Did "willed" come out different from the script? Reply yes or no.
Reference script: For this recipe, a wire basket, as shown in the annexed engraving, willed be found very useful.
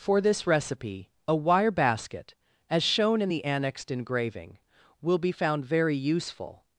yes